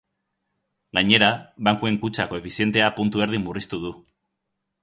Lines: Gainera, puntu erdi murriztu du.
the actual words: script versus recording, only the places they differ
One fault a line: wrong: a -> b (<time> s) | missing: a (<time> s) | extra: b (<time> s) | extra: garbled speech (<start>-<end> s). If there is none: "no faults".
extra: bankuen kutxa koefizientea (1.7 s)